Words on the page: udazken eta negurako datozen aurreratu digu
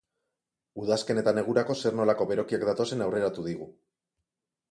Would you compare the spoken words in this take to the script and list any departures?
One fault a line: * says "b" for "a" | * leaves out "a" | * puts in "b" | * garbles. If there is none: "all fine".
* puts in "zer nolako berokiak"